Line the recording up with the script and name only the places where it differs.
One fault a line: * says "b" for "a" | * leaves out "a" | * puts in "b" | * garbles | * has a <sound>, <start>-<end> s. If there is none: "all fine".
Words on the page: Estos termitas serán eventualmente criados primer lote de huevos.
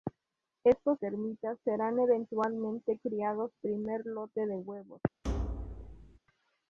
* has a thud, 5.2-6.2 s